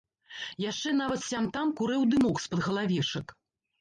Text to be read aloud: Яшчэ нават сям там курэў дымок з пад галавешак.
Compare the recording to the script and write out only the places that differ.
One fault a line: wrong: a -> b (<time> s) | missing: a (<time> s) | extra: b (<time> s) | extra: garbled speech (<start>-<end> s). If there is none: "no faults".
no faults